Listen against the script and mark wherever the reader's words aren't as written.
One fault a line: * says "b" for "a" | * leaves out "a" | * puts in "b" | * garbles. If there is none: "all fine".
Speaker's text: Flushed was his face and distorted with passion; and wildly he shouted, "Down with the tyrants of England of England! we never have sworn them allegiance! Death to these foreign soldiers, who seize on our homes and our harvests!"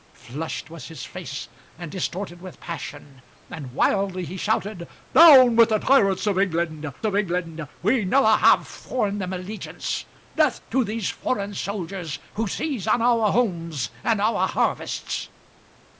all fine